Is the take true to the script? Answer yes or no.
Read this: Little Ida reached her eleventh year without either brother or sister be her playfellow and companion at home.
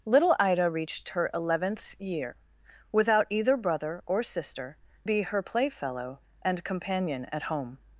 yes